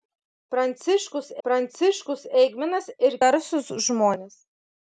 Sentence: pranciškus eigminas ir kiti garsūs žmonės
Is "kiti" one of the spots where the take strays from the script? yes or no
yes